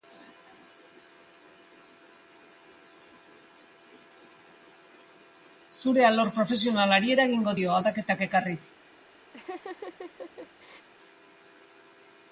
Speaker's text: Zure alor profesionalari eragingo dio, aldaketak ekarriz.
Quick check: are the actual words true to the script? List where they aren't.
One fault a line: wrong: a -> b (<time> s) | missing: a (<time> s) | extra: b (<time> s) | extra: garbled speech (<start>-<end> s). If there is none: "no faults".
no faults